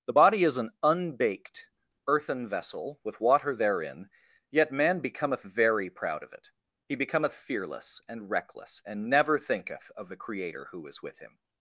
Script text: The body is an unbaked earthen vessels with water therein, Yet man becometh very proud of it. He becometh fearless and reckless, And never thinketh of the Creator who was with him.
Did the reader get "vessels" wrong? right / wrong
wrong